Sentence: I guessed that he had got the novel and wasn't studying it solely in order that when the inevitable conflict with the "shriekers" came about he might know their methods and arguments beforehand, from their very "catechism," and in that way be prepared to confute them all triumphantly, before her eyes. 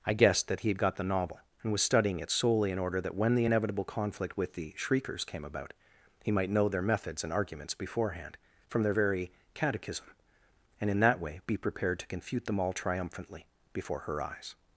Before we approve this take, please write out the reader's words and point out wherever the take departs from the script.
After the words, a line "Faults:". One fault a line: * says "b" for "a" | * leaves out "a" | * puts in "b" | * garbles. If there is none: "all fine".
I guessed that he had got the novel and was studying it solely in order that when the inevitable conflict with the "shriekers" came about he might know their methods and arguments beforehand, from their very "catechism," and in that way be prepared to confute them all triumphantly, before her eyes.
Faults:
* says "was" for "wasn't"